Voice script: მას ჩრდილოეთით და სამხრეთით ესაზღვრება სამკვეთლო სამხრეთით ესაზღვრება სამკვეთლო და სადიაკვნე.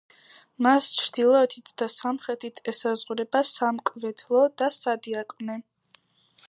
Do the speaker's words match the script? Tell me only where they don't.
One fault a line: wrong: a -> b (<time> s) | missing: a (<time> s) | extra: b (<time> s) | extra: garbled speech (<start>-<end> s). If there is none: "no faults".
missing: სამხრეთით ესაზღვრება სამკვეთლო (4.4 s)